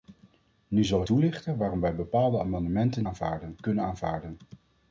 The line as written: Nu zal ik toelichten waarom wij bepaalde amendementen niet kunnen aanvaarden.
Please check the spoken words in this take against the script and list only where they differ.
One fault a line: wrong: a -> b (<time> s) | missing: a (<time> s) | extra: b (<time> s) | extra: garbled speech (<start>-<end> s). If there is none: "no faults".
missing: ik (1.0 s)
wrong: niet -> aanvaarden (3.0 s)